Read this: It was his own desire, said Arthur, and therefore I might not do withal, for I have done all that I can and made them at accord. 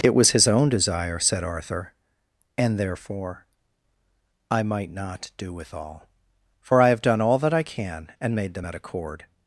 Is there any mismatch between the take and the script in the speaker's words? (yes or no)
no